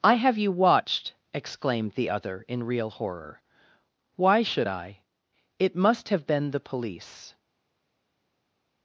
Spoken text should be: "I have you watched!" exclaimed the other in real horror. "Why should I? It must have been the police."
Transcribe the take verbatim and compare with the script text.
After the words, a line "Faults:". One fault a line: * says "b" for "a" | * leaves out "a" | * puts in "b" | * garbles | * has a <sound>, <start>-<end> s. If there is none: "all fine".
"I have you watched!" exclaimed the other in real horror. "Why should I? It must have been the police."
Faults:
all fine